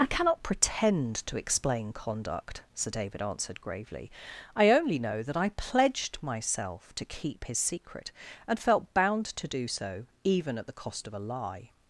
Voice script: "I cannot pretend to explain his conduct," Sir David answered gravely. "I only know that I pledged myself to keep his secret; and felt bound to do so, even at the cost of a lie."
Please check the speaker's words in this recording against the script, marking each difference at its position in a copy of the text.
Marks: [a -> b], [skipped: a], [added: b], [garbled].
"I cannot pretend to explain [skipped: his] conduct," Sir David answered gravely. "I only know that I pledged myself to keep his secret; and felt bound to do so, even at the cost of a lie."